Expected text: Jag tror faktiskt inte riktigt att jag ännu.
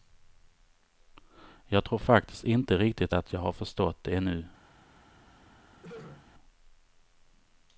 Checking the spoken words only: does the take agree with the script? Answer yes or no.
no